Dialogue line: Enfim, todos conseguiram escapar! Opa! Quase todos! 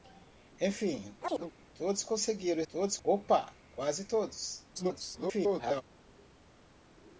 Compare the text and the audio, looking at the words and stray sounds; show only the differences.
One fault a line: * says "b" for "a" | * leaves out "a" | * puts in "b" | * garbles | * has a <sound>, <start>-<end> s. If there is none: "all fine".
* has a chirp, 1.2-1.5 s
* says "todos" for "escapar"
* garbles